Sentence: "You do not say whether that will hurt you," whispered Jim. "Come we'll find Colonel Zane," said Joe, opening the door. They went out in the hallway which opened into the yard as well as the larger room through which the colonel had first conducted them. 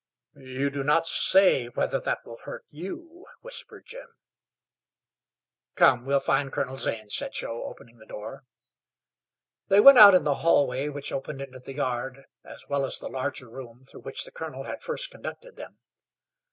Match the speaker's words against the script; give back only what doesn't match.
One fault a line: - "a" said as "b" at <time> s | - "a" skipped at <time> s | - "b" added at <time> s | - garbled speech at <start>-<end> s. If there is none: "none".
none